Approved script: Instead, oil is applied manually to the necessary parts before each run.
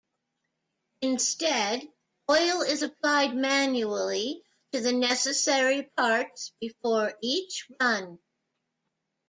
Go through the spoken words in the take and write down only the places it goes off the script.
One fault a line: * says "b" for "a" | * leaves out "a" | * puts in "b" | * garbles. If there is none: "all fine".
all fine